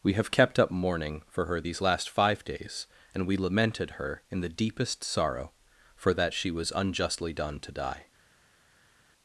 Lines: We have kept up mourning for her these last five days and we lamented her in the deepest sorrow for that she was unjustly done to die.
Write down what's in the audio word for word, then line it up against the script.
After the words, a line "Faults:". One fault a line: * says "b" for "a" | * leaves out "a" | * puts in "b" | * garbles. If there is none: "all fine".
We have kept up mourning for her these last five days and we lamented her in the deepest sorrow for that she was unjustly done to die.
Faults:
all fine